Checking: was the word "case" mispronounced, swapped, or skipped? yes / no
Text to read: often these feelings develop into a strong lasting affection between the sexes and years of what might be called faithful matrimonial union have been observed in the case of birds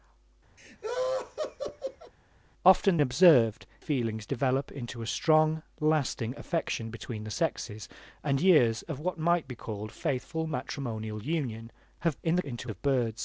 yes